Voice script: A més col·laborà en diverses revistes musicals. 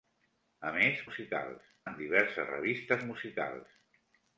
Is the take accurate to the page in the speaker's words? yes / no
no